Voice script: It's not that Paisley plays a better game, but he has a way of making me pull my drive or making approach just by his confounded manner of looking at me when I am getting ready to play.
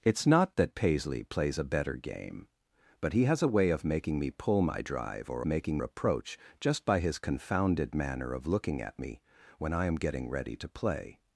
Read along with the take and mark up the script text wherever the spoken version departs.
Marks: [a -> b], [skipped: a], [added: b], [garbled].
It's not that Paisley plays a better game, but he has a way of making me pull my drive or making approach just by his confounded manner of looking at me when I am getting ready to play.